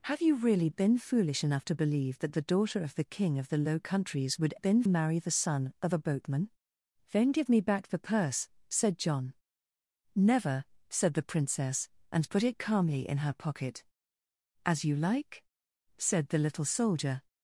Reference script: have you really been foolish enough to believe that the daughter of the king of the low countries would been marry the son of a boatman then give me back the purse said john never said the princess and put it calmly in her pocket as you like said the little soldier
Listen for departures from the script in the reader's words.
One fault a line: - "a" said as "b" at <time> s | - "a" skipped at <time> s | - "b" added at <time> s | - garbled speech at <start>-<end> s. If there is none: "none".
none